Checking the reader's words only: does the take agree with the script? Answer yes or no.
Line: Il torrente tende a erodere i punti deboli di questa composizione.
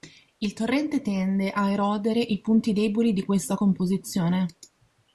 yes